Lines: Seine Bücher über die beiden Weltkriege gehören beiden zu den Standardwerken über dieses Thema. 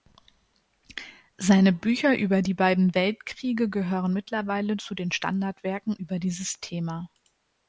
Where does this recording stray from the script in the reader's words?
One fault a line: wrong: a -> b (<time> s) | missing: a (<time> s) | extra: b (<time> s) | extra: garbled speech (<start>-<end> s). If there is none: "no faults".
wrong: beiden -> mittlerweile (4.1 s)